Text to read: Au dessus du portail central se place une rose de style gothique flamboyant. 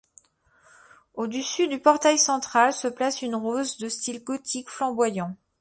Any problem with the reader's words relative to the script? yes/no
no